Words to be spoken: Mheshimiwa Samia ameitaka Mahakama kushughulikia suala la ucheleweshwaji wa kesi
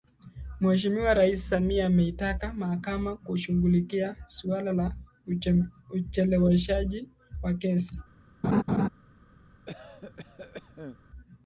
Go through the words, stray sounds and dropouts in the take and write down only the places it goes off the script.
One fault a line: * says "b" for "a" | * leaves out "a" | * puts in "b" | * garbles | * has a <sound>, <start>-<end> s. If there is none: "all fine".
* puts in "Rais"
* has a laugh, 8.4-8.9 s
* has a cough, 9.7-11.0 s